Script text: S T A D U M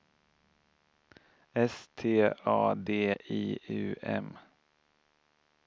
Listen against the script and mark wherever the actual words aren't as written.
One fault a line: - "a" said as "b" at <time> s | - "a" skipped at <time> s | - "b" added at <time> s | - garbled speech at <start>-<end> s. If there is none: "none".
- "I" added at 3.1 s